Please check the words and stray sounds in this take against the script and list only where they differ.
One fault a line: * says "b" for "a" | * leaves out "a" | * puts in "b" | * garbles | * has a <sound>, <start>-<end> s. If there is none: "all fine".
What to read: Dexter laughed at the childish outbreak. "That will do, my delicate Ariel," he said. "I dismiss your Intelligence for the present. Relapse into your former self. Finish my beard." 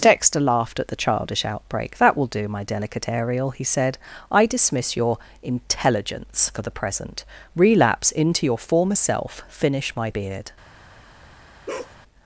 * has a bark, 11.7-12.0 s